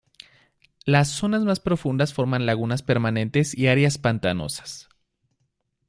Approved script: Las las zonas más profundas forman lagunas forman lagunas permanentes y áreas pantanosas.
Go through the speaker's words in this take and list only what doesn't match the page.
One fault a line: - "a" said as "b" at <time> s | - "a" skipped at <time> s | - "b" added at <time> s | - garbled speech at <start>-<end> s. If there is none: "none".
- "las" skipped at 1.1 s
- "forman lagunas" skipped at 2.8 s